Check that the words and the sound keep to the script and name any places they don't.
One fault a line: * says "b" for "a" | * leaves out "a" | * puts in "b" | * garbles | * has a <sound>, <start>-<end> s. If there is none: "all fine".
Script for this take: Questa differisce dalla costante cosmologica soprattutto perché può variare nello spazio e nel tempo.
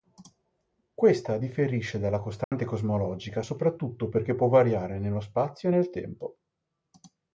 * has a dropout, 2.4-2.5 s